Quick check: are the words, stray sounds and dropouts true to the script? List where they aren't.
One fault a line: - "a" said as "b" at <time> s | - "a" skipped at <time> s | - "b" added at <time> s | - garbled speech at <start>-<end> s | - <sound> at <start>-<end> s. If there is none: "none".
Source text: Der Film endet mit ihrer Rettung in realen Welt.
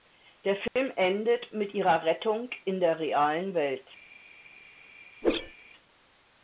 - dropout at 0.7-0.8 s
- "der" added at 2.8 s
- whoosh at 5.2-5.6 s